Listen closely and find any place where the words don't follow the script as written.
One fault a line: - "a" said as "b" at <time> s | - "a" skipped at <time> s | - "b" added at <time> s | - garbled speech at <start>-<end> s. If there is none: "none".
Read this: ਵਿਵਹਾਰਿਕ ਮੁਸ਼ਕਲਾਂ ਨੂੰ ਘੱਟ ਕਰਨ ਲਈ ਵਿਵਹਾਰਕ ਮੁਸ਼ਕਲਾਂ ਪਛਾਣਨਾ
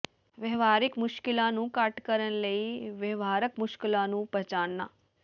- "ਨੂੰ" added at 4.1 s